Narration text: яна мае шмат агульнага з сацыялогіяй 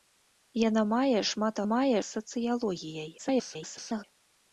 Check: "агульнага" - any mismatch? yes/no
yes